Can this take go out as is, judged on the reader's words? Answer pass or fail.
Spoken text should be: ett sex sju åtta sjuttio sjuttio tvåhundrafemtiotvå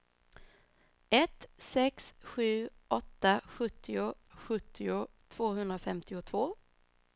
pass